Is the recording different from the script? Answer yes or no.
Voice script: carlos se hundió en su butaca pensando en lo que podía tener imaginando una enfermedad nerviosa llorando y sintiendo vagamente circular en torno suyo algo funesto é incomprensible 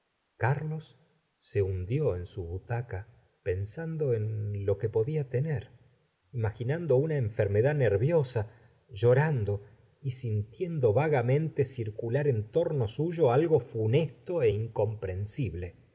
no